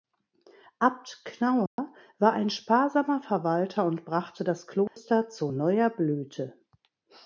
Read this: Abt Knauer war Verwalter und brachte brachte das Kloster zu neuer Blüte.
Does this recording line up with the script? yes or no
no